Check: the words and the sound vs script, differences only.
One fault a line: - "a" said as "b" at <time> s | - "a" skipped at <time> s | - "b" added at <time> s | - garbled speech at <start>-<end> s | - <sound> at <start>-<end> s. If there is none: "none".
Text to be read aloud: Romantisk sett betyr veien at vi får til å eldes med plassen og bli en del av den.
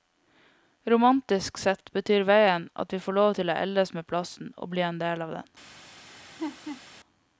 - "lov" added at 3.2 s
- laugh at 6.1-6.8 s